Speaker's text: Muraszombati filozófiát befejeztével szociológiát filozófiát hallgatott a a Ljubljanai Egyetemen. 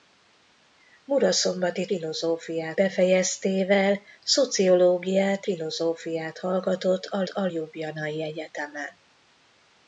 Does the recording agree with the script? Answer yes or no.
yes